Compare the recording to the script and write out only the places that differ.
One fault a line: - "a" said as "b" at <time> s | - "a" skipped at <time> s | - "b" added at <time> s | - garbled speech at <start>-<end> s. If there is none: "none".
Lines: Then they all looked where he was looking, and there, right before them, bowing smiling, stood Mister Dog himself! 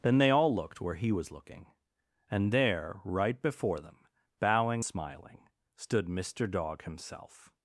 none